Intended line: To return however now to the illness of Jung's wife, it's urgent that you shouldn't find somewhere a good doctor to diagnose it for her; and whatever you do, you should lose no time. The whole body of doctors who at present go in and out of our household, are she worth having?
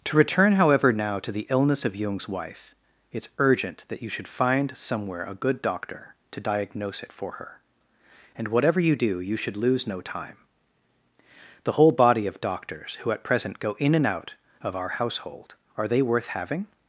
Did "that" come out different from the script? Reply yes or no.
no